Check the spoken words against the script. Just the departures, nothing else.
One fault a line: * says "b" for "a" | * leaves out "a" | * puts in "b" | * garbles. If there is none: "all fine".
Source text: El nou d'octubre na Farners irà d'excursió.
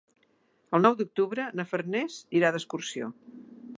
all fine